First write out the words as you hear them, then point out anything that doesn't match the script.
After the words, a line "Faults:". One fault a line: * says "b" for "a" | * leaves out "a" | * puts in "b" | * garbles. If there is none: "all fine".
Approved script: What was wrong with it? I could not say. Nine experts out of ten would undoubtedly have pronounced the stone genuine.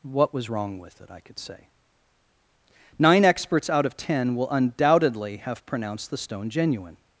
What was wrong with it? I could say. Nine experts out of ten will undoubtedly have pronounced the stone genuine.
Faults:
* leaves out "not"
* says "will" for "would"